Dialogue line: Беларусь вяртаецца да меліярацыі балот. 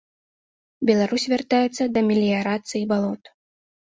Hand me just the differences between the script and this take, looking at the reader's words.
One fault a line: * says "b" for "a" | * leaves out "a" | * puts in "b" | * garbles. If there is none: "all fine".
all fine